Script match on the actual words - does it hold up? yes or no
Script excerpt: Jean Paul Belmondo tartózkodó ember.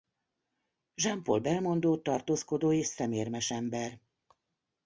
no